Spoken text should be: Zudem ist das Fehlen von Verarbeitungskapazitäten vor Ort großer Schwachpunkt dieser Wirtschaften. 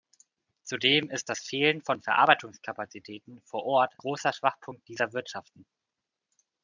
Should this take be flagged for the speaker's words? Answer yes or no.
no